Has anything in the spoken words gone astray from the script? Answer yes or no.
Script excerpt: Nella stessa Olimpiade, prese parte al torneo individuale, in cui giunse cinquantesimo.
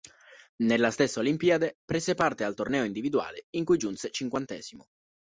no